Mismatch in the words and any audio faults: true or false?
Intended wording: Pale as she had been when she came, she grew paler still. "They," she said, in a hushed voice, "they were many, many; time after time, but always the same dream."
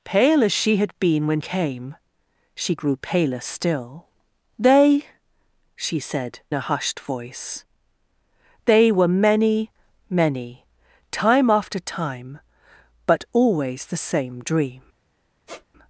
true